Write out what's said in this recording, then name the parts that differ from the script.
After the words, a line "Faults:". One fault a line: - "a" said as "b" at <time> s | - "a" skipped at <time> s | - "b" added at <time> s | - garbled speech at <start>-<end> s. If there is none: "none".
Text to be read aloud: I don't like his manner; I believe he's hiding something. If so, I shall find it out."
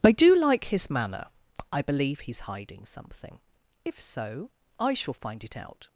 I do like his manner; I believe he's hiding something. If so, I shall find it out."
Faults:
- "don't" said as "do" at 0.1 s